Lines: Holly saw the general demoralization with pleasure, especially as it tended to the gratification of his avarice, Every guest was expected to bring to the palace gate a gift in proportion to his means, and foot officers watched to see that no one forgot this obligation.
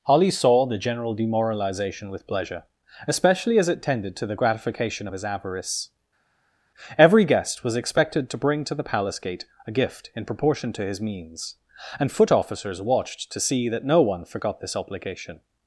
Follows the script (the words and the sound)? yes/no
yes